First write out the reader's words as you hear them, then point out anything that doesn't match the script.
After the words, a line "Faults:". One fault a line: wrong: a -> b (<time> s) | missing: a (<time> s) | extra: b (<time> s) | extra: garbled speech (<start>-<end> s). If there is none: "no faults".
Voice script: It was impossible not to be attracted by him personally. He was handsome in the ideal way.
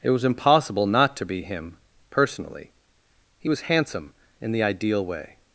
It was impossible not to be him personally. He was handsome in the ideal way.
Faults:
missing: attracted by (1.4 s)